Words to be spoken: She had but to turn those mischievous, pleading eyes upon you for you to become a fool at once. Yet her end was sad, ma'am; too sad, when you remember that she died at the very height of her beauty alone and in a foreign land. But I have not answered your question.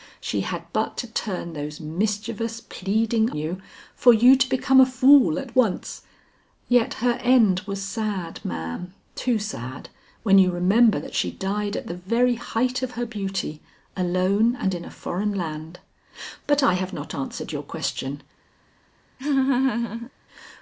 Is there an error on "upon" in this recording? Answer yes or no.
yes